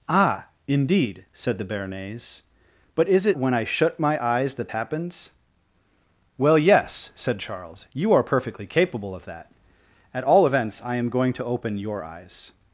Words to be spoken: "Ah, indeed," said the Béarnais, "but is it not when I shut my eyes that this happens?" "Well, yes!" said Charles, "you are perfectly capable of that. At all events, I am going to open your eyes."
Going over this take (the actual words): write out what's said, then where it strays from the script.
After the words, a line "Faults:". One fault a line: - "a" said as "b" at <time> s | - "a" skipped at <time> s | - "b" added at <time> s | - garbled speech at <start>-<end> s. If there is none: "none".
"Ah, indeed," said the Béarnais, "but is it when I shut my eyes that happens?" "Well, yes!" said Charles, "you are perfectly capable of that. At all events, I am going to open your eyes."
Faults:
- "not" skipped at 3.4 s
- "this" skipped at 4.7 s